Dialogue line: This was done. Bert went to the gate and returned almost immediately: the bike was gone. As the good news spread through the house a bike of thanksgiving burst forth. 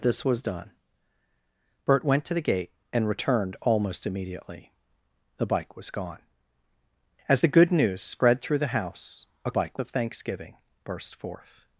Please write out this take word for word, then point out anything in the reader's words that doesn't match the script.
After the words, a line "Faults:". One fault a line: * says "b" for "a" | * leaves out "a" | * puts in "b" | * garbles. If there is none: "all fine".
This was done. Bert went to the gate and returned almost immediately: the bike was gone. As the good news spread through the house a bike of thanksgiving burst forth.
Faults:
all fine